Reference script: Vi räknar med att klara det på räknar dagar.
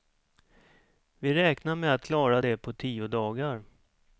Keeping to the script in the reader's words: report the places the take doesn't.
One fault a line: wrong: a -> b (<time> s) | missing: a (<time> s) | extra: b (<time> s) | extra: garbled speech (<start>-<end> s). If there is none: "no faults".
wrong: räknar -> tio (2.7 s)